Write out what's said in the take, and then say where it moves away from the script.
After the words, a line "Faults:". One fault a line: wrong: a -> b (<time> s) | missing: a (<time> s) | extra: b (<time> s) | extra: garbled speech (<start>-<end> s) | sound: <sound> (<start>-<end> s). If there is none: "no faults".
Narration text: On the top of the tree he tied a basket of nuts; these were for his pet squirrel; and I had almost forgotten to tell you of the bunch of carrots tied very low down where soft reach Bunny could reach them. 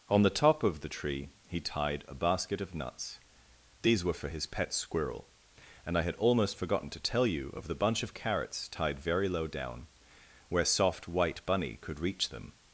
On the top of the tree he tied a basket of nuts; these were for his pet squirrel; and I had almost forgotten to tell you of the bunch of carrots tied very low down where soft white Bunny could reach them.
Faults:
wrong: reach -> white (11.1 s)